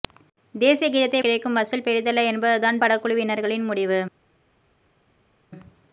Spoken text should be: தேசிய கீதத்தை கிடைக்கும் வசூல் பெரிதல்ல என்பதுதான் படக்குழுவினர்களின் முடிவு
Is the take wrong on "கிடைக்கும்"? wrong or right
right